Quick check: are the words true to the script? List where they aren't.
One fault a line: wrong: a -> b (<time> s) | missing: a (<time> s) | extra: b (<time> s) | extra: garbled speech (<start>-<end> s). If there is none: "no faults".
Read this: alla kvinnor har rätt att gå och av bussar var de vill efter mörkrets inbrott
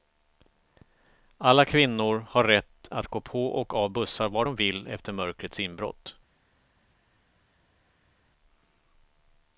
extra: på (3.2 s)